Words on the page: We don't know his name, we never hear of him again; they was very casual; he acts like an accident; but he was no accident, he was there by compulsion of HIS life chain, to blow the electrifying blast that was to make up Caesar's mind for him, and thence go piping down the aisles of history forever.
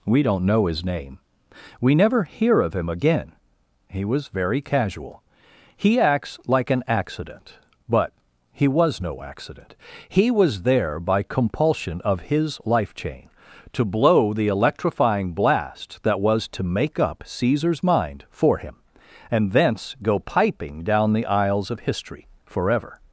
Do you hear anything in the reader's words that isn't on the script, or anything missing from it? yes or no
yes